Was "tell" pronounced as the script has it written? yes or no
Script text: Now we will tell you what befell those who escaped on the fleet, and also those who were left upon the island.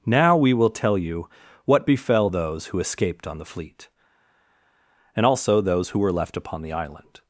yes